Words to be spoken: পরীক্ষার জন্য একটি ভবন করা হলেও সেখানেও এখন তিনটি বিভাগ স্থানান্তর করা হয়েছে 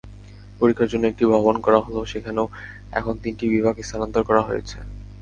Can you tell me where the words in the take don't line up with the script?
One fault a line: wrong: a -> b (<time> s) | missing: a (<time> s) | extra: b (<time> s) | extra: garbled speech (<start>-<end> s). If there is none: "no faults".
no faults